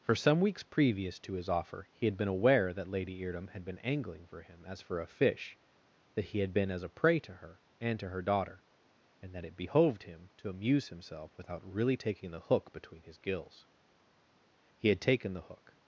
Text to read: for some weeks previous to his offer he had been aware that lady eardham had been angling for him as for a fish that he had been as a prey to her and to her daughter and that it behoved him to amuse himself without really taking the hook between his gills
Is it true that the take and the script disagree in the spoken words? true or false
true